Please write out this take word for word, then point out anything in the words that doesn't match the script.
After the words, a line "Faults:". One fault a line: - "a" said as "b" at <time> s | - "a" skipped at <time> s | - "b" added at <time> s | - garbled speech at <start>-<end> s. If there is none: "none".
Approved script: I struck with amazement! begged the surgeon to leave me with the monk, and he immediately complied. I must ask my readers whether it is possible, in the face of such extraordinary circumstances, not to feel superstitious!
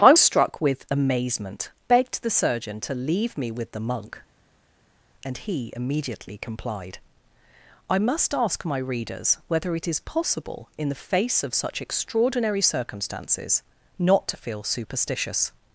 I struck with amazement! begged the surgeon to leave me with the monk, and he immediately complied. I must ask my readers whether it is possible, in the face of such extraordinary circumstances, not to feel superstitious!
Faults:
none